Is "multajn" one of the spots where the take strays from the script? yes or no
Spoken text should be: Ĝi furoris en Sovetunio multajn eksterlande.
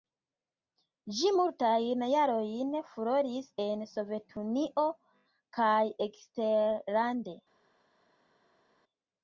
yes